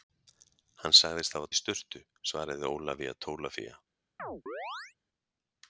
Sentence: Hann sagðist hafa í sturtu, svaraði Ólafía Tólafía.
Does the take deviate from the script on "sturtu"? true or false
false